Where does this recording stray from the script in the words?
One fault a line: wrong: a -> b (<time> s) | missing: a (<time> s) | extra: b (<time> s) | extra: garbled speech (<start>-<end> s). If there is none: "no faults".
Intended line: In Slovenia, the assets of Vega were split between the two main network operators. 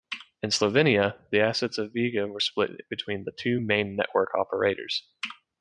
no faults